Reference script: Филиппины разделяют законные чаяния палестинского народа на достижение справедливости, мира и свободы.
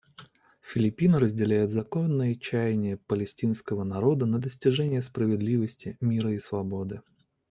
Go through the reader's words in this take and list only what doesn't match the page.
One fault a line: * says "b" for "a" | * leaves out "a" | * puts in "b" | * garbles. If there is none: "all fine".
all fine